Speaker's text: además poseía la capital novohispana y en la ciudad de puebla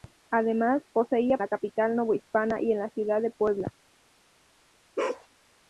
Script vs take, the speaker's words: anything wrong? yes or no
no